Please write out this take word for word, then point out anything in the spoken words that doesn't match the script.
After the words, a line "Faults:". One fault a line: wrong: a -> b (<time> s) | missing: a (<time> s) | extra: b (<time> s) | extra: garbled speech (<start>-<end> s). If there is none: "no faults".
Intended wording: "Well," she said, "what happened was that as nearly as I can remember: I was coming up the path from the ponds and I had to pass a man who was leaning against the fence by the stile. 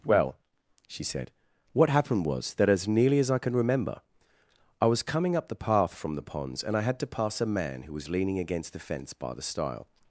"Well," she said, "what happened was that as nearly as I can remember: I was coming up the path from the ponds and I had to pass a man who was leaning against the fence by the stile.
Faults:
no faults